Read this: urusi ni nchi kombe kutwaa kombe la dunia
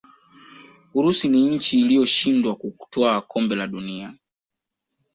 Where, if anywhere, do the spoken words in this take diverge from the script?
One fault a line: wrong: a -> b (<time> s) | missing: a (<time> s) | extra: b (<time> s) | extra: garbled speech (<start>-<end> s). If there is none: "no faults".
wrong: kombe -> iliyoshindwa (1.8 s)